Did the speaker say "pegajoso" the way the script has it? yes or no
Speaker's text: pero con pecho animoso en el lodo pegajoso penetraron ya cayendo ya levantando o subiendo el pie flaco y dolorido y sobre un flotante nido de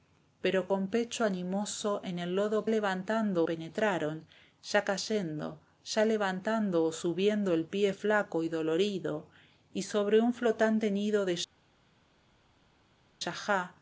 no